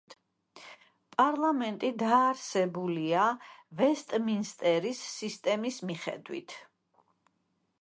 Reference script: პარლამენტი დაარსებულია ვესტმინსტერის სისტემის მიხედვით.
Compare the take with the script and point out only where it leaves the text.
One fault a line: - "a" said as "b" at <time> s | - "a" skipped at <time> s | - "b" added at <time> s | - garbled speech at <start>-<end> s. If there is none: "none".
none